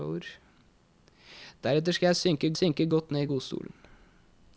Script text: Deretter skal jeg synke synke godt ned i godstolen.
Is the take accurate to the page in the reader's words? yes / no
yes